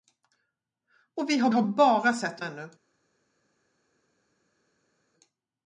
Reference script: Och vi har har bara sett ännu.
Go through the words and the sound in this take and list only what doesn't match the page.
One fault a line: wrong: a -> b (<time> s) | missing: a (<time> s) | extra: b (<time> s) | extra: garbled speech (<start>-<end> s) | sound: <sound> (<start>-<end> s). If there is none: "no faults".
no faults